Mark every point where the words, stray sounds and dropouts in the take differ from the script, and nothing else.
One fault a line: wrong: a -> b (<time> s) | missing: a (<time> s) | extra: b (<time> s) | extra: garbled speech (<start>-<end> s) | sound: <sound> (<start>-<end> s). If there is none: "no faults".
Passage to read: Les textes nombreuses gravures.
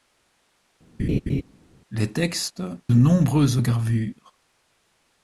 sound: laugh (1.0-1.4 s)